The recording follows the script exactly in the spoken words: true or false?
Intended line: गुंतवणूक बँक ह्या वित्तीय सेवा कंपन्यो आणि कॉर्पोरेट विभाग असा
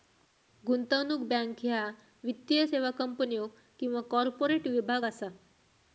false